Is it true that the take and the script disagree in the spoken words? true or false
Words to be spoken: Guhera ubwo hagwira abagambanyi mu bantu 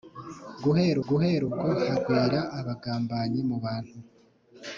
true